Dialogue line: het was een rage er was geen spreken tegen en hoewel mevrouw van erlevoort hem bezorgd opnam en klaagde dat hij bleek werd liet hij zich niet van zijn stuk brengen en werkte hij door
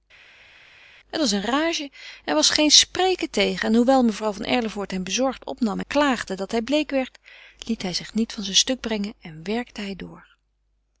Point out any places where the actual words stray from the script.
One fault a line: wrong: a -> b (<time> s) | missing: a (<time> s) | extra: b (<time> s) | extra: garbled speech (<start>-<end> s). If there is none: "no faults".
missing: en (5.8 s)